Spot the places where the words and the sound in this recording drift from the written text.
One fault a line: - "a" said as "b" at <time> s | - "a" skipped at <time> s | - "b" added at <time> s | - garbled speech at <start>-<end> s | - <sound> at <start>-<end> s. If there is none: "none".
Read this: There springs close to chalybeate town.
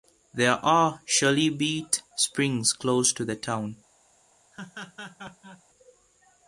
- "are chalybeate" added at 0.7 s
- "chalybeate" said as "the" at 3.2 s
- laugh at 4.5-5.6 s